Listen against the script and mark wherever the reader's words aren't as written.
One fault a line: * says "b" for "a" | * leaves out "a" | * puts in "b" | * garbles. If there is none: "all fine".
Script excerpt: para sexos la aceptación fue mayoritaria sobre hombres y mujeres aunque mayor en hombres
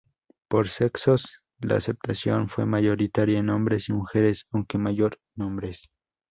* says "por" for "para"
* says "en" for "sobre"